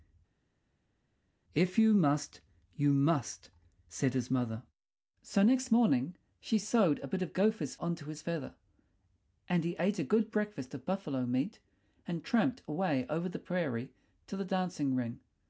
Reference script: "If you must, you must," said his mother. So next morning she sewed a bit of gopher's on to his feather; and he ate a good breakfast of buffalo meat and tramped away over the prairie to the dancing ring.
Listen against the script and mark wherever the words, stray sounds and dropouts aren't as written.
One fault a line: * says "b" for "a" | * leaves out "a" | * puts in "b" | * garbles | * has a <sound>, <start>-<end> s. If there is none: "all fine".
all fine